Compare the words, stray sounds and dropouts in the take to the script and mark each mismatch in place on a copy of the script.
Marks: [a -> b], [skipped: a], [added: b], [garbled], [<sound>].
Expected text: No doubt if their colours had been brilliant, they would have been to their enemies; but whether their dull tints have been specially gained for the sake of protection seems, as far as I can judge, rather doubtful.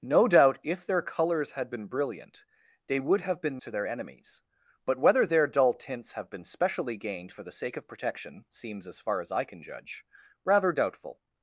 No doubt if their colours had been brilliant, they would have been to their enemies; but whether their dull tints have been specially gained for the sake of protection seems, as far as I can judge, rather doubtful.